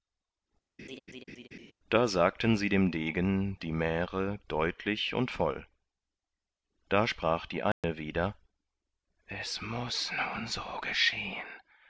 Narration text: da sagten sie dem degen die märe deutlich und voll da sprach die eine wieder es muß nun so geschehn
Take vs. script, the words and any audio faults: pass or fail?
fail